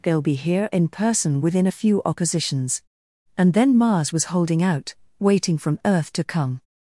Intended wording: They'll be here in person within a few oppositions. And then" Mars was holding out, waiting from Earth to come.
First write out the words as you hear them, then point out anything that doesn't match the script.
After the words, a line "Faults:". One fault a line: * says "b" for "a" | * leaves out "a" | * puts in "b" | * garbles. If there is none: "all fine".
They'll be here in person within a few oppositions. And then" Mars was holding out, waiting from Earth to come.
Faults:
all fine